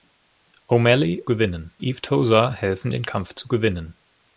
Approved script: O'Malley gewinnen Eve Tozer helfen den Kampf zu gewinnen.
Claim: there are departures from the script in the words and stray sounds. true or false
false